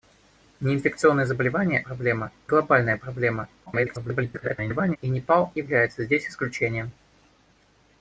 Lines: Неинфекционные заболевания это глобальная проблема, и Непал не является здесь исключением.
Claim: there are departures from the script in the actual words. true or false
true